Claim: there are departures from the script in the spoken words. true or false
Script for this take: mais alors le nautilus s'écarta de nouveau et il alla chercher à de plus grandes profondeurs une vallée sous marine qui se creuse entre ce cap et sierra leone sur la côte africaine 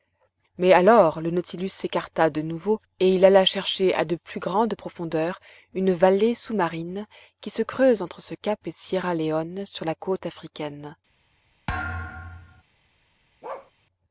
false